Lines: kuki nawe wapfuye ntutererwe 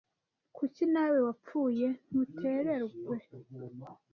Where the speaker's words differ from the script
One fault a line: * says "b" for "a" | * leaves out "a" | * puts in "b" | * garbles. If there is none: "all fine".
all fine